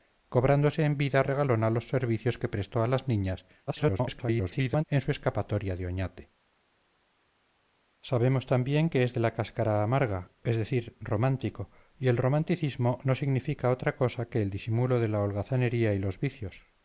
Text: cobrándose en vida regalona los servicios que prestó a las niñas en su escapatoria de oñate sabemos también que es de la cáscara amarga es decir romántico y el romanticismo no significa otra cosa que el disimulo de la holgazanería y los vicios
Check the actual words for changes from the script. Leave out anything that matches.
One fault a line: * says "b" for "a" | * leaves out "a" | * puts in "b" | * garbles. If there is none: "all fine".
* garbles